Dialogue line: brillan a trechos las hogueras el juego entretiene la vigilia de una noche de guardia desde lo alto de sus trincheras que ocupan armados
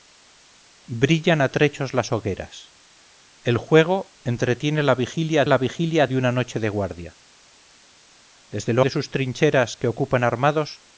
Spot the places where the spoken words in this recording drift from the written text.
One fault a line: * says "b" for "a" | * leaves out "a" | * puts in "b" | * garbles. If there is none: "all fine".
* puts in "la vigilia"
* leaves out "alto"